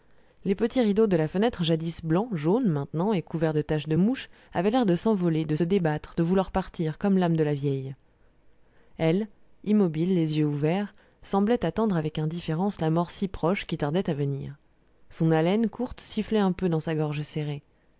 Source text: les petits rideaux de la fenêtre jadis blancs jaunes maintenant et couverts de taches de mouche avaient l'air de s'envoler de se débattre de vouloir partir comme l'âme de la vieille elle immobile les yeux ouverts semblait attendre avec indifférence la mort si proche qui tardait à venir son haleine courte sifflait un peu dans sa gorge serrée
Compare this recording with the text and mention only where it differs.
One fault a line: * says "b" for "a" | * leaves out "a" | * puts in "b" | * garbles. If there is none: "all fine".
* leaves out "se"